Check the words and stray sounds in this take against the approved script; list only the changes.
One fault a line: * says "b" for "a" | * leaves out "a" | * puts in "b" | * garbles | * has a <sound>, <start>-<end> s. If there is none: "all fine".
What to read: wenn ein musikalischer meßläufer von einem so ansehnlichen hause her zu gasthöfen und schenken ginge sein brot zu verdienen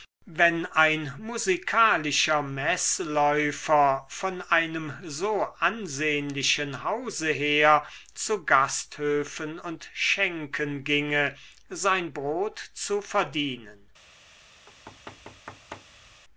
* has a thud, 14.7-16.2 s